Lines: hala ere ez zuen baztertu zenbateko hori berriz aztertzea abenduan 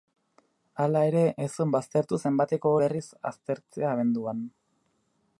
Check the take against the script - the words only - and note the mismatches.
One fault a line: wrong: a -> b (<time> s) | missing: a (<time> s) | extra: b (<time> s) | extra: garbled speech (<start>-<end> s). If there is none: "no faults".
missing: hori (2.7 s)